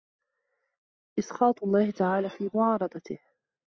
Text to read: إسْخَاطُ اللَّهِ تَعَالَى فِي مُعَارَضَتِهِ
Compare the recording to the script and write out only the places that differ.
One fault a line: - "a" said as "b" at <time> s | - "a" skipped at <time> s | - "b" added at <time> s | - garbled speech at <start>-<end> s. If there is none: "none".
none